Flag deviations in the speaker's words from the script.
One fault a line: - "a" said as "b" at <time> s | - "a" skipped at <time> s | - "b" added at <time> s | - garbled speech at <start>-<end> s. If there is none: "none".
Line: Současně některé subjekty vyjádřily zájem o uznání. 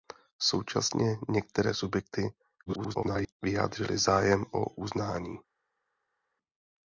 - garbled speech at 2.7-3.3 s